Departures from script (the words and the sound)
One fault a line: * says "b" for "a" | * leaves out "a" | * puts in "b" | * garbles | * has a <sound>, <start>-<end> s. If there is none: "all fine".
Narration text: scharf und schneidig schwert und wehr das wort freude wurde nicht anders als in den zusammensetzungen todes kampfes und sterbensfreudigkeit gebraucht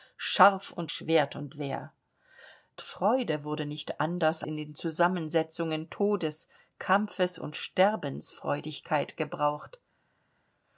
* leaves out "schneidig"
* leaves out "das wort"
* leaves out "als"